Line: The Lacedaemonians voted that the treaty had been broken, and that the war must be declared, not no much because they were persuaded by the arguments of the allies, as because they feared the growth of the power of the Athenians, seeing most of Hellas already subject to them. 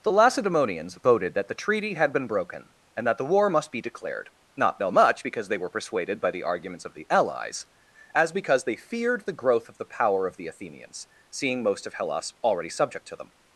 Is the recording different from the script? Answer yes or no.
no